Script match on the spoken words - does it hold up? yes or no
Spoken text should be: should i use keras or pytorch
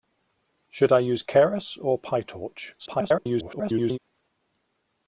no